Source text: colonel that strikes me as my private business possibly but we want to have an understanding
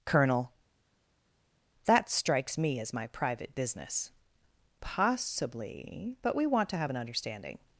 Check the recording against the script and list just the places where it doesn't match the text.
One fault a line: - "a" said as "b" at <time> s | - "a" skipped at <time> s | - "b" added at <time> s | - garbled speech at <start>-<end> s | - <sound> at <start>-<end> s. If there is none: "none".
none